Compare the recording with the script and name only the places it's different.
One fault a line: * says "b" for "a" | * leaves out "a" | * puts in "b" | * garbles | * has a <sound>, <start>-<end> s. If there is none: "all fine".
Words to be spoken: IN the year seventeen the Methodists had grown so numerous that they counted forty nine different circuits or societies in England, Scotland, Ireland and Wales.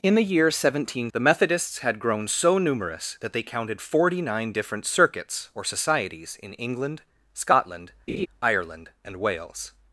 * has a laugh, 8.1-8.3 s